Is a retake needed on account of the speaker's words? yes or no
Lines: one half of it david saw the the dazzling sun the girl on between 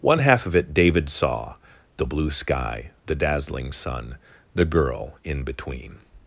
yes